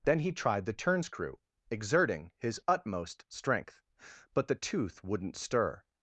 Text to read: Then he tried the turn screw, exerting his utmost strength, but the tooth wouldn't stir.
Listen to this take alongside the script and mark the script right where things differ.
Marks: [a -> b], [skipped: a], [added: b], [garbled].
Then he tried the turn screw, exerting his utmost strength, but the tooth wouldn't stir.